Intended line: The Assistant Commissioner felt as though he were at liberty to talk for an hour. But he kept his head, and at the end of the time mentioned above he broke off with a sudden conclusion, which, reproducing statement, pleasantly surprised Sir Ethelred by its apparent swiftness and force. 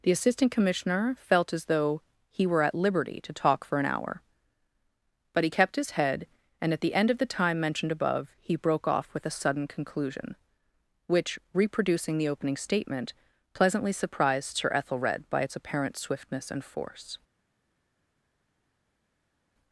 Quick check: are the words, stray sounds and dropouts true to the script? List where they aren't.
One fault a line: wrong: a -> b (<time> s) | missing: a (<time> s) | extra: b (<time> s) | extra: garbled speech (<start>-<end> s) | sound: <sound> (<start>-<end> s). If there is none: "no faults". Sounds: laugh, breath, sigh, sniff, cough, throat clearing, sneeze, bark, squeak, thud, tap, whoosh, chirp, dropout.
extra: the opening (12.2 s)